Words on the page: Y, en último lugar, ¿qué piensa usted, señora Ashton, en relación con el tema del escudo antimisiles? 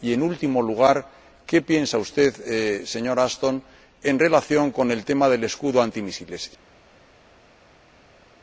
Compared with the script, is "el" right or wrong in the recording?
right